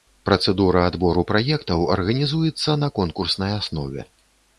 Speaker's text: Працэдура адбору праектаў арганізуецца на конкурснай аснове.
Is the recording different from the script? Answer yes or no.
no